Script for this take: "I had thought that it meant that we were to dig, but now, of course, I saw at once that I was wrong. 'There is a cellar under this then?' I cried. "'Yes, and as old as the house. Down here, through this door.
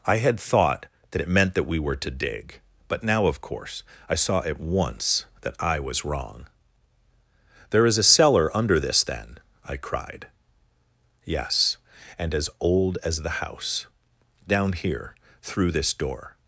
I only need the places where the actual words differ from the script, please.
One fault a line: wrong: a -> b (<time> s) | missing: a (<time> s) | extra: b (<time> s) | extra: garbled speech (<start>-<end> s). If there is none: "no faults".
no faults